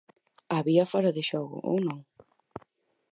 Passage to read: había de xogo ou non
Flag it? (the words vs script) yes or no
yes